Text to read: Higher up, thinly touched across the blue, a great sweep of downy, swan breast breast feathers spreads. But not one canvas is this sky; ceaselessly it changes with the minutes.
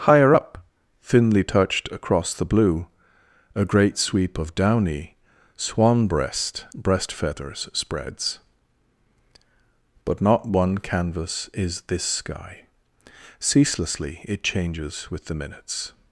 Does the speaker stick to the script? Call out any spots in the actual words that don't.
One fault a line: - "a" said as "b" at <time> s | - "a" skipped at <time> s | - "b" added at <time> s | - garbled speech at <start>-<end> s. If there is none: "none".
none